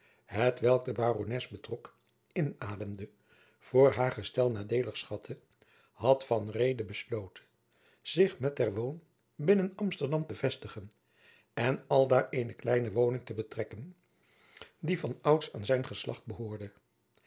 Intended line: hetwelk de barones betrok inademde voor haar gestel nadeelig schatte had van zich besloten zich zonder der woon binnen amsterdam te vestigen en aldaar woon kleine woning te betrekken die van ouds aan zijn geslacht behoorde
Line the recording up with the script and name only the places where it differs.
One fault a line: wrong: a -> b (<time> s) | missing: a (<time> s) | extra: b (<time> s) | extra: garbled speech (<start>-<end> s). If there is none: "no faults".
wrong: zich -> reede (6.5 s)
wrong: zonder -> met (8.4 s)
wrong: woon -> eene (12.3 s)